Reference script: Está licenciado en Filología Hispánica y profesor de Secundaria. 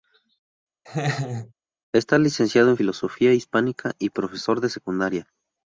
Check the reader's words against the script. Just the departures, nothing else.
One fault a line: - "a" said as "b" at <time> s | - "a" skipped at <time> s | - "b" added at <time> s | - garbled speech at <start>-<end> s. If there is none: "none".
none